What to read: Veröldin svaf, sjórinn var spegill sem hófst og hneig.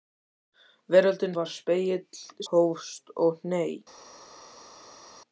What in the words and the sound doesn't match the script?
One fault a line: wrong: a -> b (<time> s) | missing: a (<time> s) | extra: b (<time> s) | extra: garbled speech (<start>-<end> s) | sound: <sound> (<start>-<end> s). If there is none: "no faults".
missing: svaf sjórinn (1.4 s)
missing: sem (2.2 s)